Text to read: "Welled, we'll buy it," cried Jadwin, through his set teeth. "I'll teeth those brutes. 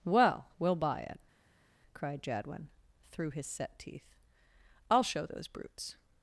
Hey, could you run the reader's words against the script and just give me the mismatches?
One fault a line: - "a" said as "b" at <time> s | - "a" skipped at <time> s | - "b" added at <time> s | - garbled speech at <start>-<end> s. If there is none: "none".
- "Welled" said as "Well" at 0.0 s
- "teeth" said as "show" at 5.0 s